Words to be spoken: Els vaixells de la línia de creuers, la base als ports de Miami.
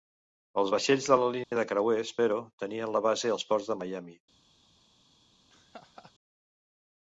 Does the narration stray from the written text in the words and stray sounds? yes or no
yes